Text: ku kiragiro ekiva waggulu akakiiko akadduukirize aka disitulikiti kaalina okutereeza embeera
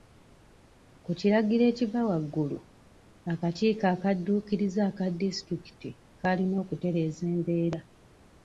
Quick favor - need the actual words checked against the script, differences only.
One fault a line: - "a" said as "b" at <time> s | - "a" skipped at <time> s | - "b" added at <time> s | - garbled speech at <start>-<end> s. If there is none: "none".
none